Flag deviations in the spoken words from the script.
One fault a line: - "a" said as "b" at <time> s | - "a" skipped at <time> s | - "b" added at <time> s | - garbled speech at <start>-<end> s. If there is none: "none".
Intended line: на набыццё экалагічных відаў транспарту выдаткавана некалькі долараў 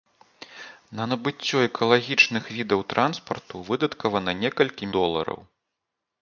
none